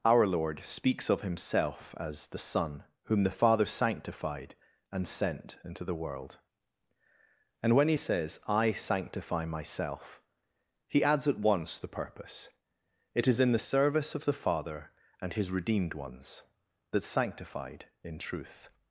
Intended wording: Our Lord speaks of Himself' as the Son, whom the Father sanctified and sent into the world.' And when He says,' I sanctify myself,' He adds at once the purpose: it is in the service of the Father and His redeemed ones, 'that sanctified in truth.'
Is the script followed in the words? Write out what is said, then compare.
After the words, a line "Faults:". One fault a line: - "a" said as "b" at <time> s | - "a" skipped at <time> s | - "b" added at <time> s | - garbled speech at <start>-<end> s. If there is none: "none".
Our Lord speaks of Himself' as the Son, whom the Father sanctified and sent into the world.' And when He says,' I sanctify myself,' He adds at once the purpose: it is in the service of the Father and His redeemed ones, 'that sanctified in truth.'
Faults:
none